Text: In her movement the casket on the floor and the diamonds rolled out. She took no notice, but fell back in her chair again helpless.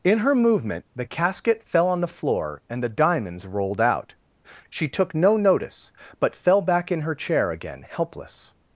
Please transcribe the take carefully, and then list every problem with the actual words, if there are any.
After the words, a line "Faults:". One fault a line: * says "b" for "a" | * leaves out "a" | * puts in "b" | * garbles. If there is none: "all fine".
In her movement the casket fell on the floor and the diamonds rolled out. She took no notice, but fell back in her chair again helpless.
Faults:
* puts in "fell"